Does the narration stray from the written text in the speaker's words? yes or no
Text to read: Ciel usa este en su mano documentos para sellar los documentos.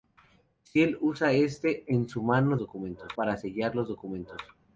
no